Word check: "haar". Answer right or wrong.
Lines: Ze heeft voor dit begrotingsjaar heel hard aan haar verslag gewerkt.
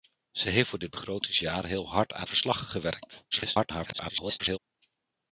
wrong